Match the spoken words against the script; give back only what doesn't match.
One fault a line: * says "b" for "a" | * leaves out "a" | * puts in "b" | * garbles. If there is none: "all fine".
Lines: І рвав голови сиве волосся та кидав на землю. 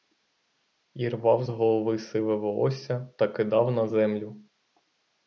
all fine